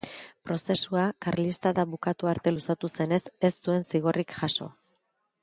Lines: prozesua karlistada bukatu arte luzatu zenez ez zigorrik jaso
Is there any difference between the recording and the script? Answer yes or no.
yes